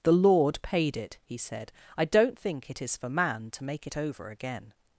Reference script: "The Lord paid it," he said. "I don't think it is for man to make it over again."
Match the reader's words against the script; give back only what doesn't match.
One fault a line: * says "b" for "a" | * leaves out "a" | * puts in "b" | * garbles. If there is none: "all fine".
all fine